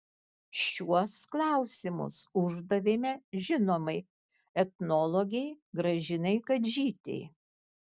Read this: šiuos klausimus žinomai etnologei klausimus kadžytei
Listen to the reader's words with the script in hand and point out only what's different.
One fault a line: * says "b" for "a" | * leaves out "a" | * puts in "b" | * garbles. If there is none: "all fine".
* puts in "uždavėme"
* says "gražinai" for "klausimus"